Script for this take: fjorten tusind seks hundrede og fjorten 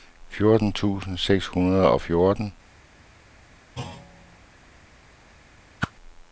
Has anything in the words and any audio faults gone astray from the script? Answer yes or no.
yes